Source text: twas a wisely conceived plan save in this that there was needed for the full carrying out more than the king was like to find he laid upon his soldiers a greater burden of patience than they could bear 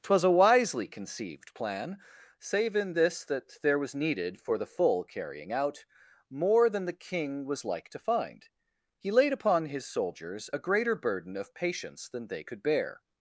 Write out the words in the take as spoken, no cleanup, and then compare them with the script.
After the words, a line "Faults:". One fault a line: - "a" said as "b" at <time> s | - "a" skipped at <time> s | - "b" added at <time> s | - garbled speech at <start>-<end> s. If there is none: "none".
twas a wisely conceived plan save in this that there was needed for the full carrying out more than the king was like to find he laid upon his soldiers a greater burden of patience than they could bear
Faults:
none